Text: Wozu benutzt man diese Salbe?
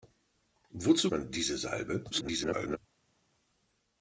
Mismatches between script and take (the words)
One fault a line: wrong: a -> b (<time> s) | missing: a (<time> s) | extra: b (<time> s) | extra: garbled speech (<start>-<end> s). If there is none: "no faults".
missing: benutzt (1.1 s)
extra: garbled speech (2.1-2.8 s)